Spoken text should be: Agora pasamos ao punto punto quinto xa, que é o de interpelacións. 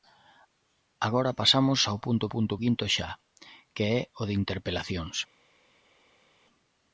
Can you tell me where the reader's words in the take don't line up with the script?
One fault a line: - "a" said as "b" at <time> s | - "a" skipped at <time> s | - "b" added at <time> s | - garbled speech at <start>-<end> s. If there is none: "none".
none